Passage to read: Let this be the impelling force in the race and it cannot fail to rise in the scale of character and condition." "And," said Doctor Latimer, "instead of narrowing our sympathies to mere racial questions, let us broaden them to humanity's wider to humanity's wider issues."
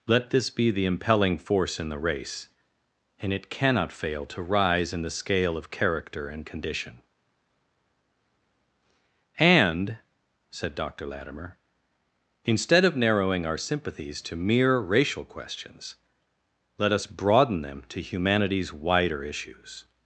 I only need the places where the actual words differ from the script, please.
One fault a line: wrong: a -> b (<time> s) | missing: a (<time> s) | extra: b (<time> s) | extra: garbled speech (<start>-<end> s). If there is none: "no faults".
missing: to humanity's wider (19.2 s)